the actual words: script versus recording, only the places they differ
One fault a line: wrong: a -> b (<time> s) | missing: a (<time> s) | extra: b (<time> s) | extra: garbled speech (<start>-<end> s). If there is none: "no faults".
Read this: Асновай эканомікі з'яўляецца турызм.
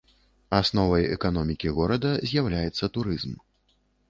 extra: горада (1.8 s)